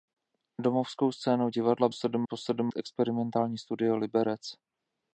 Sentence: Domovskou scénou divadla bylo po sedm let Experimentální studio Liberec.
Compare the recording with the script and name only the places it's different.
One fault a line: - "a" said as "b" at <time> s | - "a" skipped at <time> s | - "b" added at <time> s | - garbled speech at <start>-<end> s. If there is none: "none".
- "bylo" said as "sedm" at 1.9 s
- "let" skipped at 2.7 s